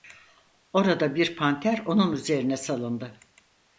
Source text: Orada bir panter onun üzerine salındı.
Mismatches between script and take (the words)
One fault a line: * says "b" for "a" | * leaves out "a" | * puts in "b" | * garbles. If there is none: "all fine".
all fine